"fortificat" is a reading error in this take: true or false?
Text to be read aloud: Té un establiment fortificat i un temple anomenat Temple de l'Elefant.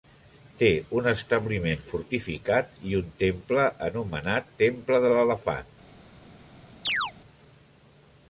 false